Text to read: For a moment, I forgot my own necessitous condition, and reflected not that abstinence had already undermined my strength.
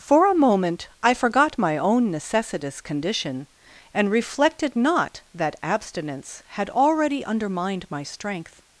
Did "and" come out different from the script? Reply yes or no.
no